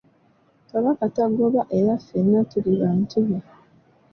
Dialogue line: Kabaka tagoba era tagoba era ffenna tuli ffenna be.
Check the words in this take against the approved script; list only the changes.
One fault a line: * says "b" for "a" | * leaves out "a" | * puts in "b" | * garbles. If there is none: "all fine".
* leaves out "tagoba era"
* says "bantu" for "ffenna"